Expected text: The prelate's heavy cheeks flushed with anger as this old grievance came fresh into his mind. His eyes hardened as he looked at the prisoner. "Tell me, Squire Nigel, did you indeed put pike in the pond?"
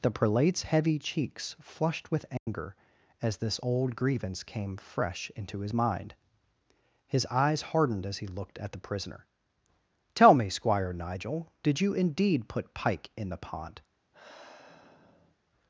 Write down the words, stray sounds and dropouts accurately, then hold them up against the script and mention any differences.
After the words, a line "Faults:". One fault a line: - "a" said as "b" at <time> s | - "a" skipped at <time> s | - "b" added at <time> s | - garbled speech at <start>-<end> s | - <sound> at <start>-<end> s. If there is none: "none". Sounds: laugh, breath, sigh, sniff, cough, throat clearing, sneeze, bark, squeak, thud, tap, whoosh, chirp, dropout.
The prelate's heavy cheeks flushed with anger as this old grievance came fresh into his mind. His eyes hardened as he looked at the prisoner. "Tell me, Squire Nigel, did you indeed put pike in the pond?"
Faults:
- dropout at 2.4-2.5 s
- sigh at 14.1-15.4 s